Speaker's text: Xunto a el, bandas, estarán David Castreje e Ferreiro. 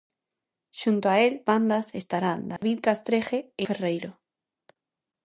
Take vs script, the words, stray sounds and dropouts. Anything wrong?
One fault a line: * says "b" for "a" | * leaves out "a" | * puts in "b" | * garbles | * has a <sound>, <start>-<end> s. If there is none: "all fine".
* has a dropout, 2.6-2.6 s